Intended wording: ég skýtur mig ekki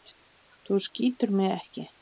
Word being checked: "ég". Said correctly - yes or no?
no